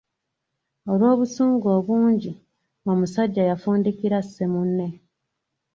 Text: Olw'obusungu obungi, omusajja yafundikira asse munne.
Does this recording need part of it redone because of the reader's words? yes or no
no